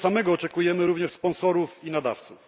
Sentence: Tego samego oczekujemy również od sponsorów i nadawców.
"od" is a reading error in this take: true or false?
true